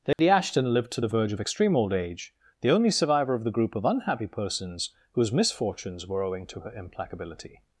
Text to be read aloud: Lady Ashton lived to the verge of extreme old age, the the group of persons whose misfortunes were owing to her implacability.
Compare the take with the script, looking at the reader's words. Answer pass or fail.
fail